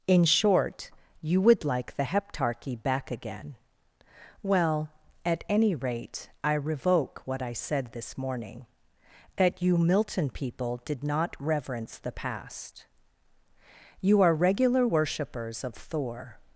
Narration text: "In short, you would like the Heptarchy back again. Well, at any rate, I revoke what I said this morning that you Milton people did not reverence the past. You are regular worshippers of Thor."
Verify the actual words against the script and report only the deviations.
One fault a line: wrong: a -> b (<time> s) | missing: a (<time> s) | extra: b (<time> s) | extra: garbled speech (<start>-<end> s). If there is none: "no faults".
no faults